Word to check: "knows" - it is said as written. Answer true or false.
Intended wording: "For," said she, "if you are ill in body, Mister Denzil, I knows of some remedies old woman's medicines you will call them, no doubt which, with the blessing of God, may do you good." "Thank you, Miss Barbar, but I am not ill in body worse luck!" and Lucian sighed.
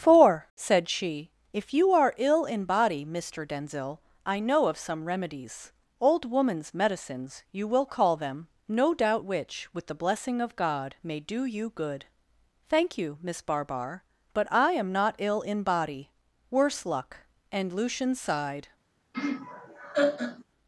false